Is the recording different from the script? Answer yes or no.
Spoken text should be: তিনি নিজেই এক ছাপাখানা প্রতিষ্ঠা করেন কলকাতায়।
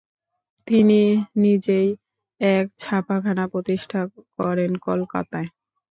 no